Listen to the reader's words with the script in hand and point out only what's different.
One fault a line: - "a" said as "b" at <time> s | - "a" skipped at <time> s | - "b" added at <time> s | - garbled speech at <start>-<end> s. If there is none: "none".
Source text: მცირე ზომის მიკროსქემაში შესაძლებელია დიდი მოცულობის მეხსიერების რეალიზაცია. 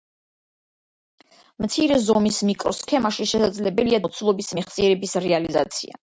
- "დიდი" skipped at 4.0 s